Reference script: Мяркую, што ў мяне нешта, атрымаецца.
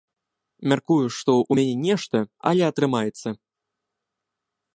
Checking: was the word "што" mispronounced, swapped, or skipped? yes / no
no